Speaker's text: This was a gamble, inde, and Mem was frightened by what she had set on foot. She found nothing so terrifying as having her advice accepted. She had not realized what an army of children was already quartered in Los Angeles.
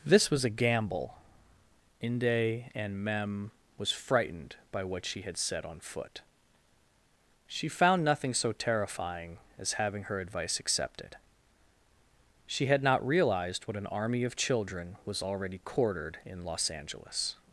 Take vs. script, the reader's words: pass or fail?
pass